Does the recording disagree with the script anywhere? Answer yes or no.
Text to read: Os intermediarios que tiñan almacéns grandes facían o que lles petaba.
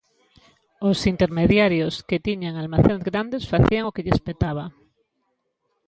no